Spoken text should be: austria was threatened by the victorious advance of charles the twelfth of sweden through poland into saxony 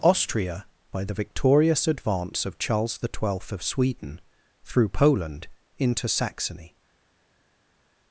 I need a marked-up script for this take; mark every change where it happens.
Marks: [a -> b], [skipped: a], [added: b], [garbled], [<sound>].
austria [skipped: was threatened] by the victorious advance of charles the twelfth of sweden through poland into saxony